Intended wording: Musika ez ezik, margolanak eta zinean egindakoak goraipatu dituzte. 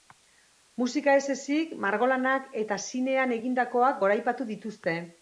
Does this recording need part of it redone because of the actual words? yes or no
no